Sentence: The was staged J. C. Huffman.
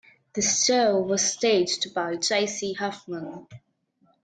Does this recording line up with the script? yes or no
no